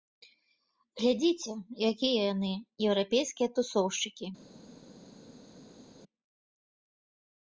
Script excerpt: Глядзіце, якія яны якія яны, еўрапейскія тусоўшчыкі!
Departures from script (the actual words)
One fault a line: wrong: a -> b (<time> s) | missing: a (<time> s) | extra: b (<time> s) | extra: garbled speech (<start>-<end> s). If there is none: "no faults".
missing: якія яны (2.5 s)